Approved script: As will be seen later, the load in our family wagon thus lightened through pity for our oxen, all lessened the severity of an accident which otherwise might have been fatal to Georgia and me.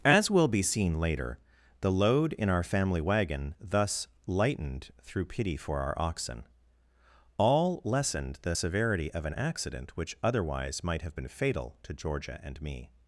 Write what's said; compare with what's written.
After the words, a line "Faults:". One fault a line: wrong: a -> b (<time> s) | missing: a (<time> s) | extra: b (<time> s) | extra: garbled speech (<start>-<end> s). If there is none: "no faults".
As will be seen later, the load in our family wagon thus lightened through pity for our oxen, all lessened the severity of an accident which otherwise might have been fatal to Georgia and me.
Faults:
no faults